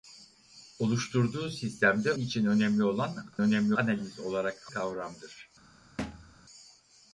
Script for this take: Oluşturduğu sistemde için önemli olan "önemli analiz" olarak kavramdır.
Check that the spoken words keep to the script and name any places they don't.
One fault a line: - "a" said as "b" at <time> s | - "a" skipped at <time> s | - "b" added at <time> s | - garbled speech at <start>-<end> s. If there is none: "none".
none